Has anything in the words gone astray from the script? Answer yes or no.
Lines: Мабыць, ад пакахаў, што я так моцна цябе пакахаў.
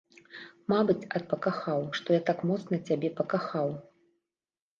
no